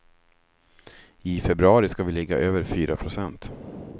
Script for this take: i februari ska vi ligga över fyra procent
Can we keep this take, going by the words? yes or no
yes